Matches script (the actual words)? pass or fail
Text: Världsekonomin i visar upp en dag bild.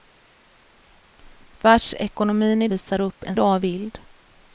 pass